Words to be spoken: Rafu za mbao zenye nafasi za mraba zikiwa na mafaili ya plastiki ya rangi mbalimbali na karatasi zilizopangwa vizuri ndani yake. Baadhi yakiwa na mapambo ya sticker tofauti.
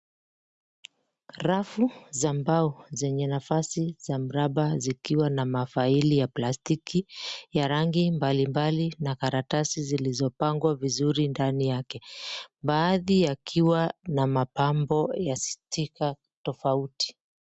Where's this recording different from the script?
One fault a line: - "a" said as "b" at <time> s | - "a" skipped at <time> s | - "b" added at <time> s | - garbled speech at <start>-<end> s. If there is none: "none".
none